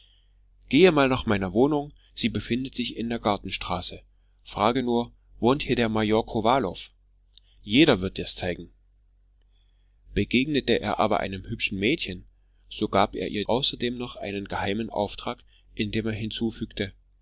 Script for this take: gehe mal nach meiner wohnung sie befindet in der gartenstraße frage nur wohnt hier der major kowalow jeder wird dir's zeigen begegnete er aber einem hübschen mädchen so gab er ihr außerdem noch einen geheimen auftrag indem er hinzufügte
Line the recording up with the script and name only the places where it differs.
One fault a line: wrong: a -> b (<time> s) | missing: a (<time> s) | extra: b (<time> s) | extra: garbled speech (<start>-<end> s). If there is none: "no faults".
extra: sich (2.7 s)